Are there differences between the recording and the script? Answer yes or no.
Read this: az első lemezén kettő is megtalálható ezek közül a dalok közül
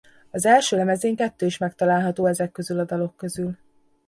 no